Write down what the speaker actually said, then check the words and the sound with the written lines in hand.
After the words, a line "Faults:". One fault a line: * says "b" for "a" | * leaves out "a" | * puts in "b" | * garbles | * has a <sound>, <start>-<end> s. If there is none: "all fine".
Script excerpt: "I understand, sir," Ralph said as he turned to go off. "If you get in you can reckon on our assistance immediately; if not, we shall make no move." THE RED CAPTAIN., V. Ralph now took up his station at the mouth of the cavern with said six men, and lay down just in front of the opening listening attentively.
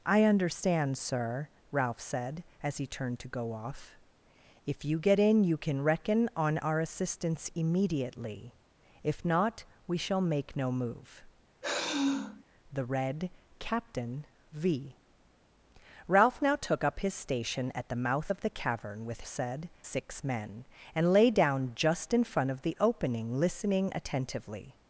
"I understand, sir," Ralph said as he turned to go off. "If you get in you can reckon on our assistance immediately; if not, we shall make no move." THE RED CAPTAIN., V. Ralph now took up his station at the mouth of the cavern with said six men, and lay down just in front of the opening listening attentively.
Faults:
* has a sigh, 11.6-12.4 s